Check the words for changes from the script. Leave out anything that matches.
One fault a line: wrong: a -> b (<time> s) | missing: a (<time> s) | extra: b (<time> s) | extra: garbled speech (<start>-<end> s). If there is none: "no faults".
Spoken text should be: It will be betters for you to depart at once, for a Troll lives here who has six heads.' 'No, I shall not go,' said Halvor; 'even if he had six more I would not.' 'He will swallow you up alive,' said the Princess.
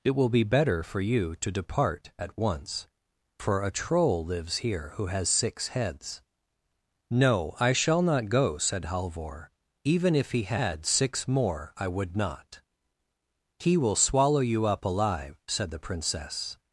wrong: betters -> better (0.4 s)